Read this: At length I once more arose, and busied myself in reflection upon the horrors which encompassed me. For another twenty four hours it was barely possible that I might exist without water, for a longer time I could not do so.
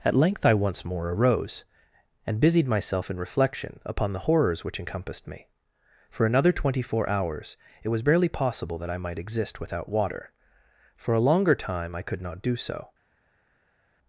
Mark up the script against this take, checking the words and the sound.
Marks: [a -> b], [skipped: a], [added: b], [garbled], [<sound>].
At length I once more arose, and busied myself in reflection upon the horrors which encompassed me. For another twenty four hours it was barely possible that I might exist without water, for a longer time I could not do so.